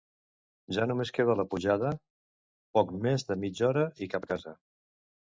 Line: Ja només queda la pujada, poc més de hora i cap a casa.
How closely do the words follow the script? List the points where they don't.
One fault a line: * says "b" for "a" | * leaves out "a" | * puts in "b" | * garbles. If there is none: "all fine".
* puts in "mitja"